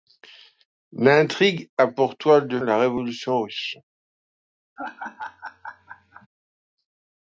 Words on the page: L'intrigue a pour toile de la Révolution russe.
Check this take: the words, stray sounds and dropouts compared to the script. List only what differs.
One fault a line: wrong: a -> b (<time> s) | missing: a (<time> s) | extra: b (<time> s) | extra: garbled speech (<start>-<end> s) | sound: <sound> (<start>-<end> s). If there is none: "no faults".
sound: laugh (4.8-6.3 s)